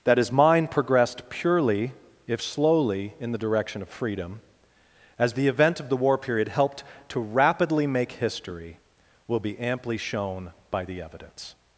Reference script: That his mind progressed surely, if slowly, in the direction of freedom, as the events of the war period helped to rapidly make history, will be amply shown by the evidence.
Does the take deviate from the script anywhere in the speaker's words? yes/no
yes